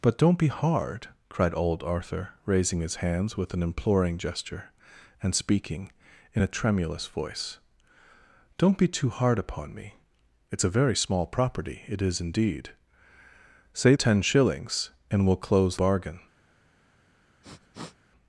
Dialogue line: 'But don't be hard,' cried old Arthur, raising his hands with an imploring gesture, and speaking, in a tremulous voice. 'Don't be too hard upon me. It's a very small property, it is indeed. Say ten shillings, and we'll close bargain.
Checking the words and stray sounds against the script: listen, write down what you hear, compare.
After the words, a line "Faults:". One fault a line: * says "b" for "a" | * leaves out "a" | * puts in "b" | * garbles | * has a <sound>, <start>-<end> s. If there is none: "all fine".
'But don't be hard,' cried old Arthur, raising his hands with an imploring gesture, and speaking, in a tremulous voice. 'Don't be too hard upon me. It's a very small property, it is indeed. Say ten shillings, and we'll close bargain.
Faults:
* has a sniff, 17.4-18.0 s